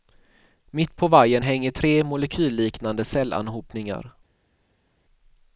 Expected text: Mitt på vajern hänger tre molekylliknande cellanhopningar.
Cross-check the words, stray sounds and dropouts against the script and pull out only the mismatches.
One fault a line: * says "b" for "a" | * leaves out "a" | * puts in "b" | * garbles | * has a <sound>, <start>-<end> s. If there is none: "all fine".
all fine